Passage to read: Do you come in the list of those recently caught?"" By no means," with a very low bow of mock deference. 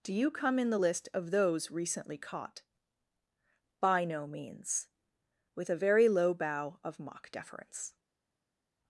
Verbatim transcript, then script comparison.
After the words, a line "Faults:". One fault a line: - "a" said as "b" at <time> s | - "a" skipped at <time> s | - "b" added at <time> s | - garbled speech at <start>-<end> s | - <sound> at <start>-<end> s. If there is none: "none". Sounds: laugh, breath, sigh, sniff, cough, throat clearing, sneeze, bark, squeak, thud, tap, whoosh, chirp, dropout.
Do you come in the list of those recently caught?"" By no means," with a very low bow of mock deference.
Faults:
none